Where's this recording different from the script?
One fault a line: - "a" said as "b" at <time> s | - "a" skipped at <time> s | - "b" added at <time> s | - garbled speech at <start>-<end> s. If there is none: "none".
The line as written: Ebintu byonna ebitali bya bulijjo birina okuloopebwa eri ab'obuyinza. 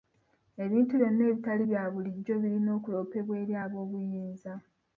none